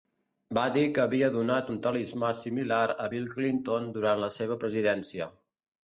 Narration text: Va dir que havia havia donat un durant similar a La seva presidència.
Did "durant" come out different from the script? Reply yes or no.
yes